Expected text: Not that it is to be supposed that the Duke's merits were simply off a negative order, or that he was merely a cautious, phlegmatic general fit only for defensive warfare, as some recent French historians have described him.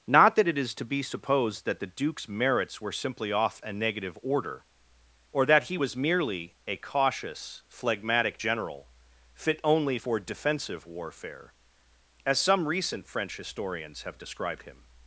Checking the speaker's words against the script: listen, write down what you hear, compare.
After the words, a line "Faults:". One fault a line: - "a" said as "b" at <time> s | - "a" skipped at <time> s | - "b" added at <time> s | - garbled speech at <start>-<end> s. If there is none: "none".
Not that it is to be supposed that the Duke's merits were simply off a negative order, or that he was merely a cautious, phlegmatic general fit only for defensive warfare, as some recent French historians have described him.
Faults:
none